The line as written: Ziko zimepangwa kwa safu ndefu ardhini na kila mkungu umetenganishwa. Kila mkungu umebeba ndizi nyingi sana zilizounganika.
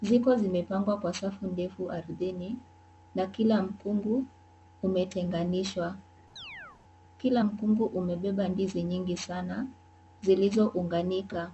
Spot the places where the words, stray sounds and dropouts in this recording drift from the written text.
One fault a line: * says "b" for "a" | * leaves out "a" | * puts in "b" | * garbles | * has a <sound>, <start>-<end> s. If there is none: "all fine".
* has a chirp, 6.4-6.8 s